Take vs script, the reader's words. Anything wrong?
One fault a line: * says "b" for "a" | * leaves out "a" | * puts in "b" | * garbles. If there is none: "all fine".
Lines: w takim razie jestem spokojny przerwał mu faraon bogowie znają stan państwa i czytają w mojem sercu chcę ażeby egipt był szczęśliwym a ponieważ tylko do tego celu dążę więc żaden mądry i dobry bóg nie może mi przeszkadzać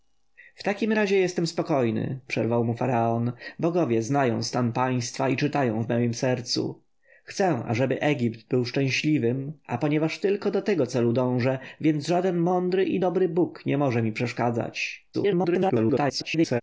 * garbles